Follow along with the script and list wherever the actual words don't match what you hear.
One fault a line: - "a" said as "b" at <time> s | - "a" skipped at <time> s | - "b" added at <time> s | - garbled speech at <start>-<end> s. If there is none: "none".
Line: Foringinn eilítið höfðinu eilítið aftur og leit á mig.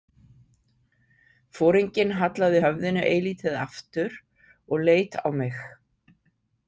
- "eilítið" said as "hallaði" at 2.2 s